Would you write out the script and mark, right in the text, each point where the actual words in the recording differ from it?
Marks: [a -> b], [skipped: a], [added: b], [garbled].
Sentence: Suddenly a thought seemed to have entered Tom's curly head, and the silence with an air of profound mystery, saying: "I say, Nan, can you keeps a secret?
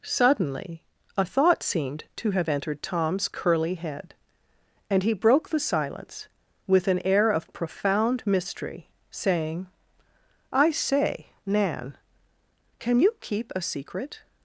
Suddenly a thought seemed to have entered Tom's curly head, and [added: he broke] the silence with an air of profound mystery, saying: "I say, Nan, can you [keeps -> keep] a secret?